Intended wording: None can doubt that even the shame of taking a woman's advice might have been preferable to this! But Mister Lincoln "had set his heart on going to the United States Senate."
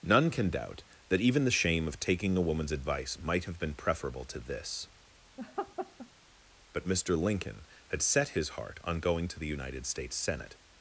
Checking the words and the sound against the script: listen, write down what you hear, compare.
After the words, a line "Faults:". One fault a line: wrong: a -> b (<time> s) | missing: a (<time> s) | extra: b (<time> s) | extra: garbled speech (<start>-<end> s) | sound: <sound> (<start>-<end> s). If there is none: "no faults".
None can doubt that even the shame of taking a woman's advice might have been preferable to this! But Mister Lincoln "had set his heart on going to the United States Senate."
Faults:
sound: laugh (5.4-6.1 s)